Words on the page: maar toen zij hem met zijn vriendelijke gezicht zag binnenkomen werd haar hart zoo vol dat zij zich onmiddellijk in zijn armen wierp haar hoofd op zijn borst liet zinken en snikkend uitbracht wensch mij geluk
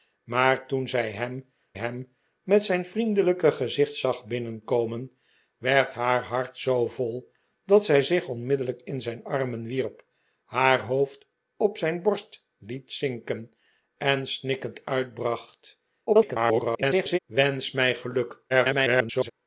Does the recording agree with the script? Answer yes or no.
no